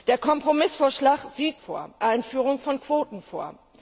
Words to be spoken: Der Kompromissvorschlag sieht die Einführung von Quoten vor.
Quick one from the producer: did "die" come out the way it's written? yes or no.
no